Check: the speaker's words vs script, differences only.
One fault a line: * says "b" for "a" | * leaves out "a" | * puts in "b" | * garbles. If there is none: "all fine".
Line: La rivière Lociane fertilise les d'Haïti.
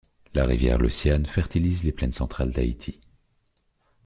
* puts in "plaines centrales"